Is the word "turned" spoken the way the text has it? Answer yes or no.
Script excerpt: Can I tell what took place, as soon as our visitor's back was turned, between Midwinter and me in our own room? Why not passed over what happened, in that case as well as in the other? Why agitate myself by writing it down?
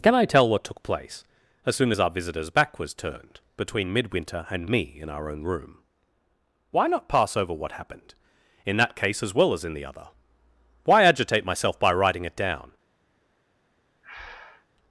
yes